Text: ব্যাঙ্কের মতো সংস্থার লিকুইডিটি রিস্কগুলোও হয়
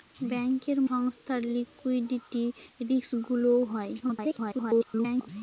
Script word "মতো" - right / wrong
wrong